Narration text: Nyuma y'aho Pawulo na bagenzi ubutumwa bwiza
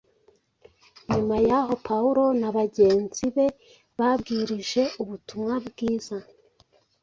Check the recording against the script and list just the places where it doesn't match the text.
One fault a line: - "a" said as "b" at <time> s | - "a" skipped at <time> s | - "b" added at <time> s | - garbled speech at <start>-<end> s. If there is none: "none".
- "be babwirije" added at 3.3 s